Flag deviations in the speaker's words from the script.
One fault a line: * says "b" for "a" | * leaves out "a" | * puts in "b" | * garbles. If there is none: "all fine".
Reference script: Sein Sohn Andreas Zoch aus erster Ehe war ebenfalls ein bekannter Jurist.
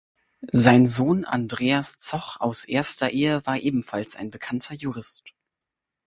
all fine